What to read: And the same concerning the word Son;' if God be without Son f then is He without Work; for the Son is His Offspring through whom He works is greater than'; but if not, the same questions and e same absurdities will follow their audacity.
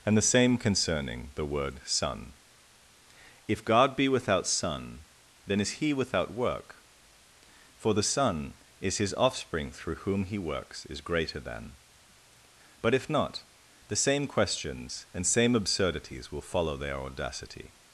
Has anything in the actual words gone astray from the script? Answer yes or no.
yes